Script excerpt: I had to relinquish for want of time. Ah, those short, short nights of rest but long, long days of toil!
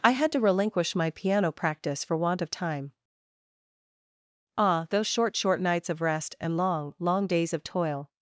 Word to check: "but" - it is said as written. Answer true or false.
false